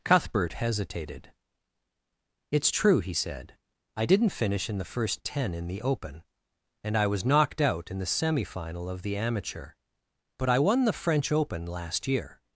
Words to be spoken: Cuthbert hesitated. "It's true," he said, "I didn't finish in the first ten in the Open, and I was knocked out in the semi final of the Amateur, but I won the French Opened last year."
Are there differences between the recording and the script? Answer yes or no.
yes